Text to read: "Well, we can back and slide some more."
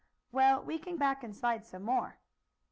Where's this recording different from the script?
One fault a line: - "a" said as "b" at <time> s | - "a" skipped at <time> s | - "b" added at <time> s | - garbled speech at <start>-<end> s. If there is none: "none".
none